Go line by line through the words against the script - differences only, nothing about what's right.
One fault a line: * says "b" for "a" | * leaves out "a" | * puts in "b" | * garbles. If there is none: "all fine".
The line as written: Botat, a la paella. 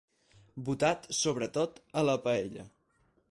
* puts in "sobretot"